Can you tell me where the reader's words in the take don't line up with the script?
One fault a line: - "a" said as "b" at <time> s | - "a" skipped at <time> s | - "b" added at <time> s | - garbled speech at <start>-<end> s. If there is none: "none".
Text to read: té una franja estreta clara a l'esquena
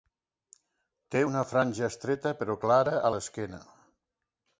- "però" added at 2.4 s